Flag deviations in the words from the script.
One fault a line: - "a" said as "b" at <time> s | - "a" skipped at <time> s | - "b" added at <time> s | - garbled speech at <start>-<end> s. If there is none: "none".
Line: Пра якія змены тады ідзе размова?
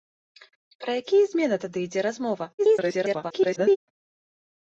- garbled speech at 2.6-3.8 s